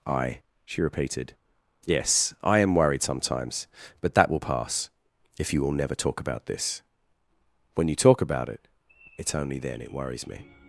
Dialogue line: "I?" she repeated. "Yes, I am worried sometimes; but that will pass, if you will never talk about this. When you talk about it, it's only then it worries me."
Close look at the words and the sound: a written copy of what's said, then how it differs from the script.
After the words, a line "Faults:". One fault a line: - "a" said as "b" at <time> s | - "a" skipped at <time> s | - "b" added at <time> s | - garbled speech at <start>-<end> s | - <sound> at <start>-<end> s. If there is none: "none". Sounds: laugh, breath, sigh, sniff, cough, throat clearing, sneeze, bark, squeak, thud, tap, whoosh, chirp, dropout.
"I?" she repeated. "Yes, I am worried sometimes; but that will pass, if you will never talk about this. When you talk about it, it's only then it worries me."
Faults:
none